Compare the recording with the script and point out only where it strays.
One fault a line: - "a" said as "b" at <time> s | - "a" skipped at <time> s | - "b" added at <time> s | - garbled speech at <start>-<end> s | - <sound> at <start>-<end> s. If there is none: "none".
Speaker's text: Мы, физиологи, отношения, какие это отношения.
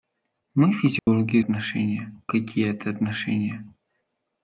- dropout at 1.0-1.1 s